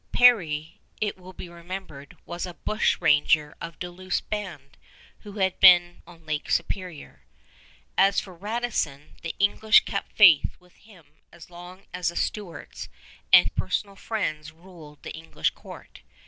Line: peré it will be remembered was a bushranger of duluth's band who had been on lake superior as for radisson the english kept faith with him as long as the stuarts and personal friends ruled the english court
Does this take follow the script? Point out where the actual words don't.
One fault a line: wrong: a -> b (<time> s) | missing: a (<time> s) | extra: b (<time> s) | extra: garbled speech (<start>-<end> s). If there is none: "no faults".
no faults